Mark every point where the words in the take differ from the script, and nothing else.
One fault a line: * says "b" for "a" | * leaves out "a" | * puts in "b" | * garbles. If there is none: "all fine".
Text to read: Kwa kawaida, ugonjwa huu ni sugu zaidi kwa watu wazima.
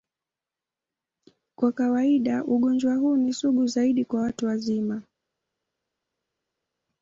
all fine